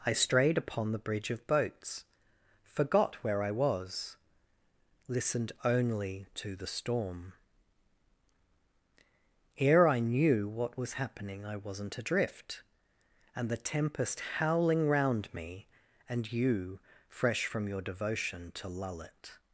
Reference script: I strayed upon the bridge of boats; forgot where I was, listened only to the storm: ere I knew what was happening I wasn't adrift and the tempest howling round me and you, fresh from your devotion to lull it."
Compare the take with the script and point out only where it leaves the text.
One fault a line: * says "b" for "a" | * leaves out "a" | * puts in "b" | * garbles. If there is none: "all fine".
all fine